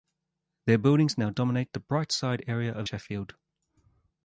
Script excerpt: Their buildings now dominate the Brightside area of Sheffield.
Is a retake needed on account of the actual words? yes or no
no